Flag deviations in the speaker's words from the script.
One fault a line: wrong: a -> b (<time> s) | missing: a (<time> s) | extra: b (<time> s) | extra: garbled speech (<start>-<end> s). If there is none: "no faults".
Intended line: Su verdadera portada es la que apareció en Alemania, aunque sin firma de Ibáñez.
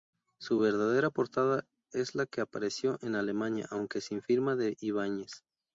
no faults